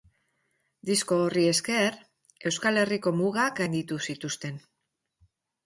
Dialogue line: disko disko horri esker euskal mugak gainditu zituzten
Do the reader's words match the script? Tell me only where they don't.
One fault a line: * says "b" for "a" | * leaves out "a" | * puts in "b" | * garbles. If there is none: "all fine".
* leaves out "disko"
* puts in "herriko"